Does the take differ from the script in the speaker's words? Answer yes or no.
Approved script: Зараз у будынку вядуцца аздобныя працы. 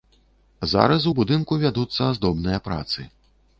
no